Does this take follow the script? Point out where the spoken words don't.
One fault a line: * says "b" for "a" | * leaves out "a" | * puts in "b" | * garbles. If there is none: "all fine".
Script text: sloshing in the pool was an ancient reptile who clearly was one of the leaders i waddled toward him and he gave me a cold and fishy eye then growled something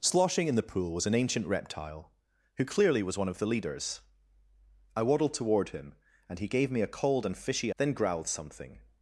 * leaves out "eye"